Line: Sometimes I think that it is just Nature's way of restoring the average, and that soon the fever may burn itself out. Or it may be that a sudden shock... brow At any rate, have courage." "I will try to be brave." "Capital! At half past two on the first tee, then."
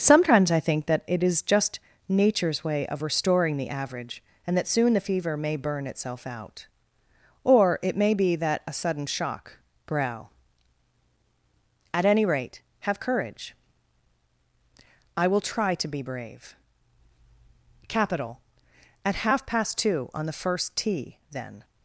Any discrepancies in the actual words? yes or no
no